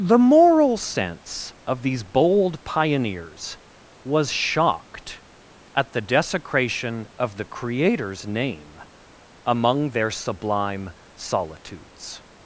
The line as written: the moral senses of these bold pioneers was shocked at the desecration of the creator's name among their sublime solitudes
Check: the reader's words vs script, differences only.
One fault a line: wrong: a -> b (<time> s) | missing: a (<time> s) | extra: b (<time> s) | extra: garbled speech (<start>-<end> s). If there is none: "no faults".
wrong: senses -> sense (0.8 s)